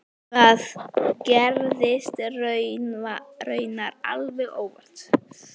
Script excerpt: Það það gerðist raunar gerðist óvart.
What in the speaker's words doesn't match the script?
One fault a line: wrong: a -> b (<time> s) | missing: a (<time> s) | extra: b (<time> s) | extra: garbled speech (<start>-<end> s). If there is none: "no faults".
missing: það (0.6 s)
wrong: gerðist -> alveg (4.1 s)